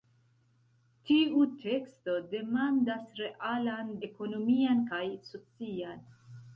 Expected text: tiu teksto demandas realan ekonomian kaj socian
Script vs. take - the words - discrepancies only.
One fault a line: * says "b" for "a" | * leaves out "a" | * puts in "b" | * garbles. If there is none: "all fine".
all fine